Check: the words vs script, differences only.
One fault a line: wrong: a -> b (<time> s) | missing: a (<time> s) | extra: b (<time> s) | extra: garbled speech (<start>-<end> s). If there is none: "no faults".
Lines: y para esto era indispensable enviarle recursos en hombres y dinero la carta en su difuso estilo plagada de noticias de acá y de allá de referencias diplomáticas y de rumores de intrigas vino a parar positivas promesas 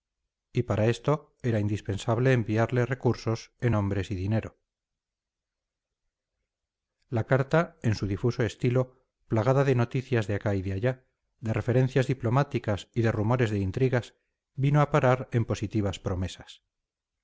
extra: en (15.3 s)